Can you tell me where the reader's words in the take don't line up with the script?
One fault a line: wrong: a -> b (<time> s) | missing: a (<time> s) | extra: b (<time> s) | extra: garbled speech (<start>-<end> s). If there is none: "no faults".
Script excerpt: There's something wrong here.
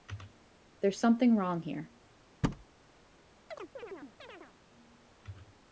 no faults